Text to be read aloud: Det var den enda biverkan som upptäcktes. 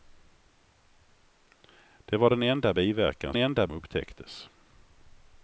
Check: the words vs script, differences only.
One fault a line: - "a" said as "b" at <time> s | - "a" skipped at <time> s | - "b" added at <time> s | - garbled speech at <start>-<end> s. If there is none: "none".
- "som" said as "enda" at 3.4 s